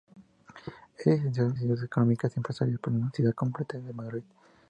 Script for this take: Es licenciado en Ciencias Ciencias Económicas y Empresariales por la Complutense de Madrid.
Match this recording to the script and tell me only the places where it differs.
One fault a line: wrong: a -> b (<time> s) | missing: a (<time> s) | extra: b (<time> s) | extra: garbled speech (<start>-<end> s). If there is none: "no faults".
missing: Ciencias (1.8 s)
extra: Universidad (3.0 s)